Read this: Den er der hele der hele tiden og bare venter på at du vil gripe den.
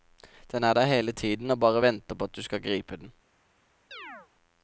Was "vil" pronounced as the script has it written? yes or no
no